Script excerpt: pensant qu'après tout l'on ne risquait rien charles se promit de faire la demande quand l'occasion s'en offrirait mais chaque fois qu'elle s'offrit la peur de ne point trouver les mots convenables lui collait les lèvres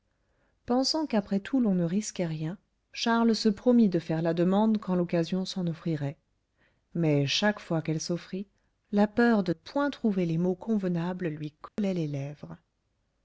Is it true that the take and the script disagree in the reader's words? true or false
true